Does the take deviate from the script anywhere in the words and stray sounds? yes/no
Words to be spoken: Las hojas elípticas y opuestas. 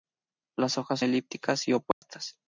yes